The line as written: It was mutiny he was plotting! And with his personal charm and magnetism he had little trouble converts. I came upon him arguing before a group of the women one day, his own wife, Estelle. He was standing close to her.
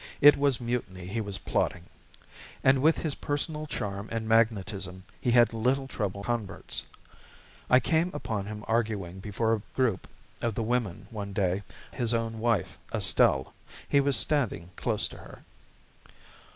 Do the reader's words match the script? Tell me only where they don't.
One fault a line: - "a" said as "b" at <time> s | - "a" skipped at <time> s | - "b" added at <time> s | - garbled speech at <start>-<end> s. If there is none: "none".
none